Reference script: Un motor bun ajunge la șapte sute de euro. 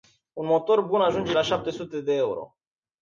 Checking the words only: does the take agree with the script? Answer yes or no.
yes